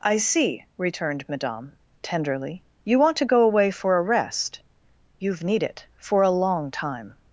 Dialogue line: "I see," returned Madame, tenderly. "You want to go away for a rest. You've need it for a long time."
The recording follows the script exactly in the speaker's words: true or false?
true